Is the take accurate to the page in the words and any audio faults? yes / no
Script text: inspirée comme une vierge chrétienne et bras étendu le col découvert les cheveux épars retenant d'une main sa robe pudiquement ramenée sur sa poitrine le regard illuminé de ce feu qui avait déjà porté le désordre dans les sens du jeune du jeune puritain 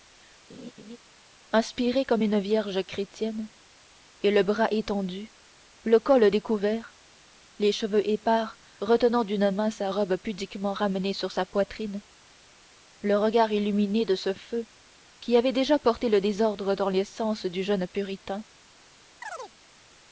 no